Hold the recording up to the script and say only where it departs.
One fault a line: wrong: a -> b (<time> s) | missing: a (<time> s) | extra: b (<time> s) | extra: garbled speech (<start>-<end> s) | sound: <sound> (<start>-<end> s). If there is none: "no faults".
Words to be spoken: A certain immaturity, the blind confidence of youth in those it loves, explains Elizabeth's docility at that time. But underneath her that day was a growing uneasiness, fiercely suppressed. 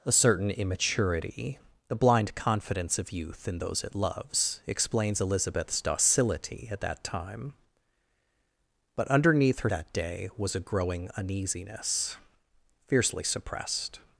no faults